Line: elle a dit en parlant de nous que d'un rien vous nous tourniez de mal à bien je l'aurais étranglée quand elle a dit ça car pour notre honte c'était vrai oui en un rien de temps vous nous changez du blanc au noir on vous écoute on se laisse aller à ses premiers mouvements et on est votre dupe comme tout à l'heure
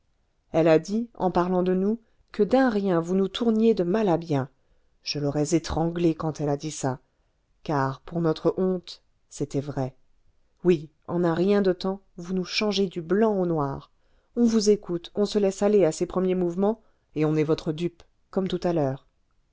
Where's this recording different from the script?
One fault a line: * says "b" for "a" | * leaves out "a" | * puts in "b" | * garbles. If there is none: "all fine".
all fine